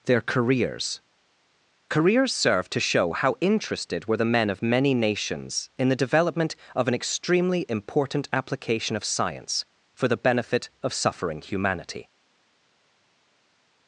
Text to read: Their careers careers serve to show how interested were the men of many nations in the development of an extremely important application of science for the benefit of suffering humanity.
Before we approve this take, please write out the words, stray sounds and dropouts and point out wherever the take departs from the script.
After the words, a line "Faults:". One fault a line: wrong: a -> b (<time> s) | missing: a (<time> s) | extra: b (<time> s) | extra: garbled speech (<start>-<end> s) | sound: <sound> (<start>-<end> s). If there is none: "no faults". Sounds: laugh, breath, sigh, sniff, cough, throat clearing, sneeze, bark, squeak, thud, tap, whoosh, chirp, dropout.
Their careers careers serve to show how interested were the men of many nations in the development of an extremely important application of science for the benefit of suffering humanity.
Faults:
no faults